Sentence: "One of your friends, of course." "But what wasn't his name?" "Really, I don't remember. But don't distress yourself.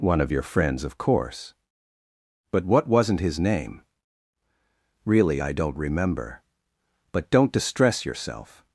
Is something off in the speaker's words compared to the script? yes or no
no